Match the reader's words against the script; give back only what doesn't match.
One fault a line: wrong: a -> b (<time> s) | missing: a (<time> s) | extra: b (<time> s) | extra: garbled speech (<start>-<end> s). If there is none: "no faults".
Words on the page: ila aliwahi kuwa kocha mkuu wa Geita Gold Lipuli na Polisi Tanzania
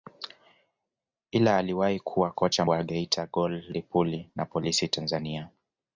missing: mkuu (2.6 s)